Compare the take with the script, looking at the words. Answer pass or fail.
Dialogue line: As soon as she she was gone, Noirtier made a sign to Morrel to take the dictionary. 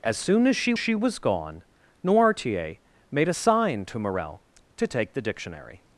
pass